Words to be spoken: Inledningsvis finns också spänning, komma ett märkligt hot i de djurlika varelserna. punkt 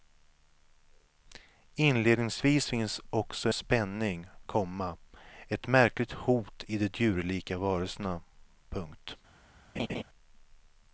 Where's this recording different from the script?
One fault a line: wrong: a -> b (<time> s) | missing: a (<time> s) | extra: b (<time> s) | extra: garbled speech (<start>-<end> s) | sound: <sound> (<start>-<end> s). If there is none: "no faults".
sound: laugh (9.8-10.0 s)